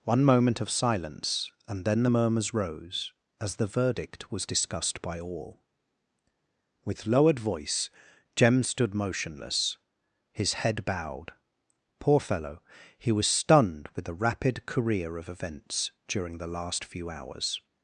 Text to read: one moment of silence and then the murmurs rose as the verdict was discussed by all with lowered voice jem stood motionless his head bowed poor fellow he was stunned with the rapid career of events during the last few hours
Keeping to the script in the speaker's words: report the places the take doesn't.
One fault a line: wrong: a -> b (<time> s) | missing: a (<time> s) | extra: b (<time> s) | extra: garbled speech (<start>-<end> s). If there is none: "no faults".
no faults